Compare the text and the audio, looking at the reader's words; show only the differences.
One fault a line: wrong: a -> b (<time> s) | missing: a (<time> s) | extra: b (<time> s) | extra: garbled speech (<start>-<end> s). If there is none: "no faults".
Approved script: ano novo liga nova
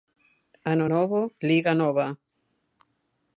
no faults